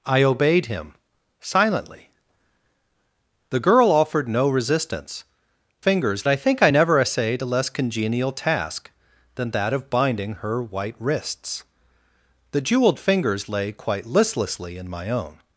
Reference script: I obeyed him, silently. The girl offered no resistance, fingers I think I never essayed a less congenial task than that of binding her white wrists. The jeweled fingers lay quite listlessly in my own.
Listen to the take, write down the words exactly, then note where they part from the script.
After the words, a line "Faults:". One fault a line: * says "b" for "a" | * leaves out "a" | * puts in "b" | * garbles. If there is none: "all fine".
I obeyed him, silently. The girl offered no resistance, fingers I think I never essayed a less congenial task than that of binding her white wrists. The jeweled fingers lay quite listlessly in my own.
Faults:
all fine